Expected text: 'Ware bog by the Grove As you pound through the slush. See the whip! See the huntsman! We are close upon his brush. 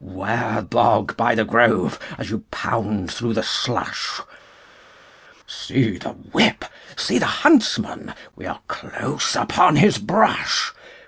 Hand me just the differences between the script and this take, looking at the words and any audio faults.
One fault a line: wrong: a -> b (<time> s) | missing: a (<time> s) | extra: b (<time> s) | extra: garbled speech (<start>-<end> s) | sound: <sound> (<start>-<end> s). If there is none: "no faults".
no faults